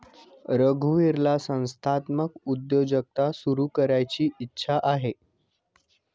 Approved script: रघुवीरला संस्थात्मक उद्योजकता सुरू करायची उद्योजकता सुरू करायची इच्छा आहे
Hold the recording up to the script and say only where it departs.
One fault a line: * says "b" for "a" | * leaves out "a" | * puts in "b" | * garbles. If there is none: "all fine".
* leaves out "उद्योजकता सुरू करायची"